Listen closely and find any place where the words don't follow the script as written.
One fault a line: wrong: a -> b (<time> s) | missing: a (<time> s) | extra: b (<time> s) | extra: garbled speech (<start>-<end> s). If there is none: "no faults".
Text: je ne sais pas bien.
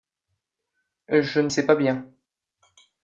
no faults